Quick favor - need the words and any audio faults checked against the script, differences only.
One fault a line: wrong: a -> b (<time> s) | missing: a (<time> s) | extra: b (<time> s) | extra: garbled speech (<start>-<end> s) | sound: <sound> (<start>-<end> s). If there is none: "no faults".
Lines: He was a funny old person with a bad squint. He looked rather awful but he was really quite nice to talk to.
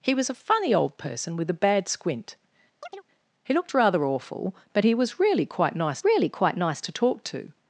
sound: chirp (2.8-3.0 s)
extra: really quite nice (6.0 s)